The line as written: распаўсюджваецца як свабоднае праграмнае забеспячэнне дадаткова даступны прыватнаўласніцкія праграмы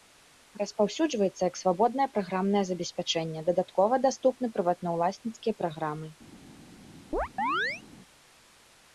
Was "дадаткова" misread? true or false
false